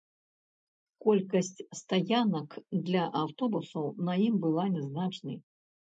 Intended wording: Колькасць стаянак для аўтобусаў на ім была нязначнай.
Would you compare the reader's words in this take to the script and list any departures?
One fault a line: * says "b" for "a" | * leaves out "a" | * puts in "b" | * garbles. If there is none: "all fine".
all fine